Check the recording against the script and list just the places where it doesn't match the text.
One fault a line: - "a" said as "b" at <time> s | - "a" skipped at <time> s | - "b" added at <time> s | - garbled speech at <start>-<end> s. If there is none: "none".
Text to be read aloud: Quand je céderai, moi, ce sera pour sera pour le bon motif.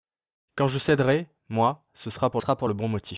none